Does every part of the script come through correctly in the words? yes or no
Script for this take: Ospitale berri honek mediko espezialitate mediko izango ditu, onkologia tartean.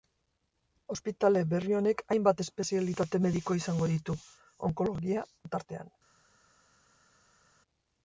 no